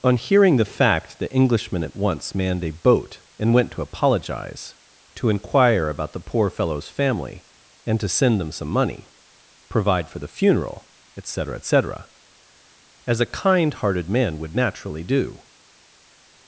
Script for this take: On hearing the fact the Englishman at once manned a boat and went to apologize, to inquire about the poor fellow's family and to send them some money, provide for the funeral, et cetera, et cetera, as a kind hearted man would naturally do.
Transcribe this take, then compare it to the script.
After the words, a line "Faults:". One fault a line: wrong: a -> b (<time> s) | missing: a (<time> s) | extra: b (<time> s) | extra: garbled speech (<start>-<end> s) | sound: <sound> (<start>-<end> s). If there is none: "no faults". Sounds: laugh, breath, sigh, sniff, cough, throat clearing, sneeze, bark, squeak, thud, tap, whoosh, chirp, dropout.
On hearing the fact the Englishman at once manned a boat and went to apologize, to inquire about the poor fellow's family and to send them some money, provide for the funeral, et cetera, et cetera, as a kind hearted man would naturally do.
Faults:
no faults